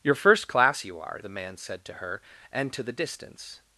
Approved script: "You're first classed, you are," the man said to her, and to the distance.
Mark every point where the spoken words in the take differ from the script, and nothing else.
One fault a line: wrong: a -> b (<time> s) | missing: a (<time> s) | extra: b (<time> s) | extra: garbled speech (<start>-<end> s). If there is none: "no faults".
wrong: classed -> class (0.5 s)